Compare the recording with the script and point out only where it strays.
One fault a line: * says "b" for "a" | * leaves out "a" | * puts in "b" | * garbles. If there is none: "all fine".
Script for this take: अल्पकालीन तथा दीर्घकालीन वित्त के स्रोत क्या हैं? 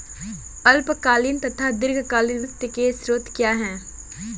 all fine